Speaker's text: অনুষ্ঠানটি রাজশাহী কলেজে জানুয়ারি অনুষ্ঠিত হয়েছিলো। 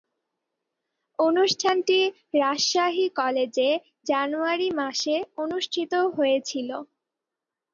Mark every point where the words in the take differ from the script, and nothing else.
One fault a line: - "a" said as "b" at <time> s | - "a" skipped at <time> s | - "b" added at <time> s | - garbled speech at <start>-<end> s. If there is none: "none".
- "মাসে" added at 4.8 s